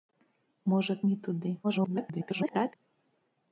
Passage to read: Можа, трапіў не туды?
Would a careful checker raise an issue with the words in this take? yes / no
yes